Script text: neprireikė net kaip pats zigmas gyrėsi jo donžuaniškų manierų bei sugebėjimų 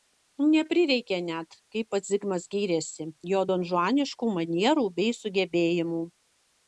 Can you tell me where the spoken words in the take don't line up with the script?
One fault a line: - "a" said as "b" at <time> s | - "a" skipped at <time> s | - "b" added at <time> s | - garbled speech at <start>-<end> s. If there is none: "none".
none